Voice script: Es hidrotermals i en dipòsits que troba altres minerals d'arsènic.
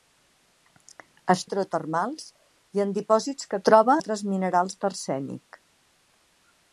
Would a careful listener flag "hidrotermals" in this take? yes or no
no